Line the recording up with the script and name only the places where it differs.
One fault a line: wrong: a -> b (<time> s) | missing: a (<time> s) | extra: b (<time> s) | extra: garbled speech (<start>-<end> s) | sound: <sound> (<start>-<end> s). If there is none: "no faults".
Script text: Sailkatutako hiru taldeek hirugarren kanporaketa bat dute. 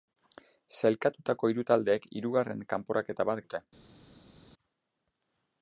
no faults